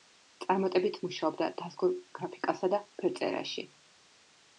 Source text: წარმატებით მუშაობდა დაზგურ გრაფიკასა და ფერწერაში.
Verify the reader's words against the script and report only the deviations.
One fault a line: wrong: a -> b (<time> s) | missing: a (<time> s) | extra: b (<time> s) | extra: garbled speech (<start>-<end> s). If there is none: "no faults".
no faults